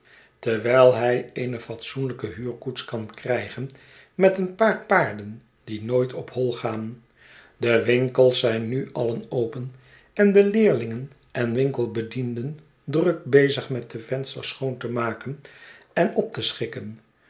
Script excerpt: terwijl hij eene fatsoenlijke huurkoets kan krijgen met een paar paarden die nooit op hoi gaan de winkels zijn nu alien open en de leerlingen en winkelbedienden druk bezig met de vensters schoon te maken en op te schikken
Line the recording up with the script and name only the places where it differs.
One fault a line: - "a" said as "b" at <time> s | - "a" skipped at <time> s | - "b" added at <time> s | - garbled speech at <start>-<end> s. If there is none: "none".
none